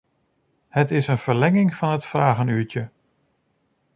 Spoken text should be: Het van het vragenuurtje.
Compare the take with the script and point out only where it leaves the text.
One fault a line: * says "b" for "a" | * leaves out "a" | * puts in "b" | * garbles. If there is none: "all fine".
* puts in "is een verlenging"